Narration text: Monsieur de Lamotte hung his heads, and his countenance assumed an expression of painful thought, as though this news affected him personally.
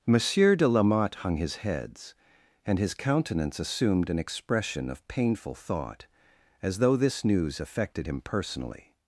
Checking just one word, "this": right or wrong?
right